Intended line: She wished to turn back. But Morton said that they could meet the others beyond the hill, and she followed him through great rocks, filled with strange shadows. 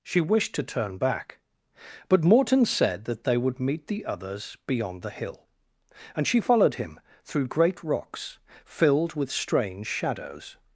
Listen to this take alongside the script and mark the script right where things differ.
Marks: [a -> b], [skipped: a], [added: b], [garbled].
She wished to turn back. But Morton said that they [could -> would] meet the others beyond the hill, and she followed him through great rocks, filled with strange shadows.